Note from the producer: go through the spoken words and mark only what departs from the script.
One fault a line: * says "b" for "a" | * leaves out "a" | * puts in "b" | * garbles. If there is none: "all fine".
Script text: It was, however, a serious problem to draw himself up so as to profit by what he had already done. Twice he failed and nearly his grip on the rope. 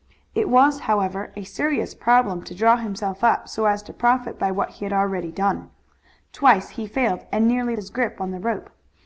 all fine